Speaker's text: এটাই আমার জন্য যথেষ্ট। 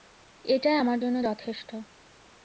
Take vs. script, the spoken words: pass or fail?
pass